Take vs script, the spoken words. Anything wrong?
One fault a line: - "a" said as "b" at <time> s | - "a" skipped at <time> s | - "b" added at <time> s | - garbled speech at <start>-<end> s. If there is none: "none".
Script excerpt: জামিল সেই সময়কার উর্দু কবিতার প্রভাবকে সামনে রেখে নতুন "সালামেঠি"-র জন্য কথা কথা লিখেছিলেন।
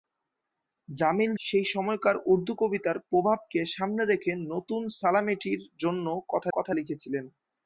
none